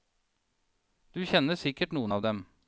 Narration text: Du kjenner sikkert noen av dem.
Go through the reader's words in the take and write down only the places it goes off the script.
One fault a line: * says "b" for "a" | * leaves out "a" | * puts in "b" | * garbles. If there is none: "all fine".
all fine